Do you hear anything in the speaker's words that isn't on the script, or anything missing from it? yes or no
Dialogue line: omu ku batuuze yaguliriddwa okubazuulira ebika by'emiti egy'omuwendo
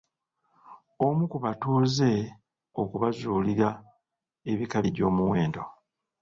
yes